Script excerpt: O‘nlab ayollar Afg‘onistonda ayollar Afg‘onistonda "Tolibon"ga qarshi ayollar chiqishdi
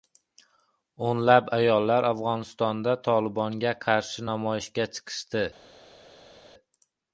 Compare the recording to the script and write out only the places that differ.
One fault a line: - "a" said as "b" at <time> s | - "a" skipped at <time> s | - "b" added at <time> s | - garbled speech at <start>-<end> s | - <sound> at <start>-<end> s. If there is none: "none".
- "ayollar Afg‘onistonda" skipped at 3.0 s
- "ayollar" said as "namoyishga" at 4.3 s